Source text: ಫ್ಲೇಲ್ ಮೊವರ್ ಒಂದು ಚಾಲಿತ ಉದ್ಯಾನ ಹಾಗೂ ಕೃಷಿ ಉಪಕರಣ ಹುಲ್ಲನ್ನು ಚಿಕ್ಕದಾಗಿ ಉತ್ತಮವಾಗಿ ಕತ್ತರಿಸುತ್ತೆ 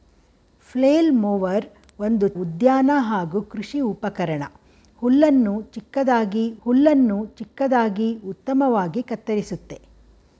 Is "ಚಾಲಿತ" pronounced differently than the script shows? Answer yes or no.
yes